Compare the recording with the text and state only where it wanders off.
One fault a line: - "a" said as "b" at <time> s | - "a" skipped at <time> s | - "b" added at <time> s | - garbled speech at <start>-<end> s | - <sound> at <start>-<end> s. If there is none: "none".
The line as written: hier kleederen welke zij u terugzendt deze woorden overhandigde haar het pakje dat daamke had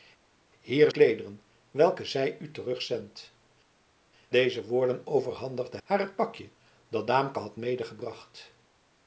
none